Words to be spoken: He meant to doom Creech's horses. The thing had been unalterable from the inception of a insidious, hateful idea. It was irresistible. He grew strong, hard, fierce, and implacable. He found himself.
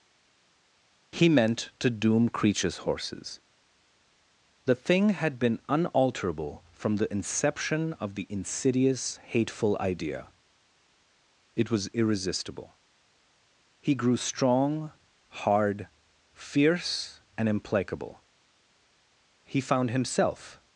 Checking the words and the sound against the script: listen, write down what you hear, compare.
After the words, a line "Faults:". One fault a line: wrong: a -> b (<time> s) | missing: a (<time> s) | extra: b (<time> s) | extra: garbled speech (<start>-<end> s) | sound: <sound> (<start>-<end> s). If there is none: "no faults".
He meant to doom Creech's horses. The thing had been unalterable from the inception of the insidious, hateful idea. It was irresistible. He grew strong, hard, fierce, and implacable. He found himself.
Faults:
wrong: a -> the (8.1 s)